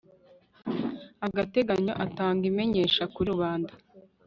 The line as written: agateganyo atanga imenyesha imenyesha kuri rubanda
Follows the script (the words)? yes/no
no